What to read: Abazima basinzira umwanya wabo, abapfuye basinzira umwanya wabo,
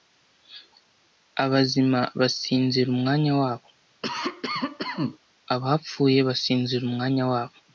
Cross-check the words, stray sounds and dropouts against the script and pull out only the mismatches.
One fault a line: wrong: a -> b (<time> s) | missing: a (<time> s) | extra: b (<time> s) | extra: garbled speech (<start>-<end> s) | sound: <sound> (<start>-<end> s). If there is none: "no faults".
sound: cough (4.0-5.2 s)